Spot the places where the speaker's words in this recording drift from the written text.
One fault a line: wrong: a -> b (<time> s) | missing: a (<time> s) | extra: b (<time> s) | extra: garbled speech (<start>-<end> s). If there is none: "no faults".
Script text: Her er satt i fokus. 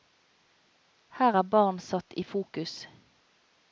extra: barn (1.5 s)